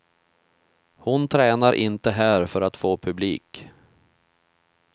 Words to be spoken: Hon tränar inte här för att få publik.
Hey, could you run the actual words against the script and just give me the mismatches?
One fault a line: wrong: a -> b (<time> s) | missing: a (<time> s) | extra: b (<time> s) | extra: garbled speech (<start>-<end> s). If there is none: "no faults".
no faults